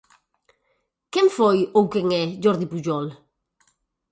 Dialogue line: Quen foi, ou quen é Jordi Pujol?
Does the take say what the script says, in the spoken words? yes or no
yes